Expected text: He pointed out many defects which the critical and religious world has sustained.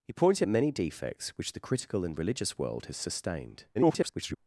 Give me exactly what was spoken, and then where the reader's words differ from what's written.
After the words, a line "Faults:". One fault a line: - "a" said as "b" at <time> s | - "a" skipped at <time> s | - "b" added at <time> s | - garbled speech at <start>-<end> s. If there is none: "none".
He pointed many defects which the critical and religious world has sustained. [garbled]
Faults:
- "out" skipped at 0.5 s
- garbled speech at 3.7-4.4 s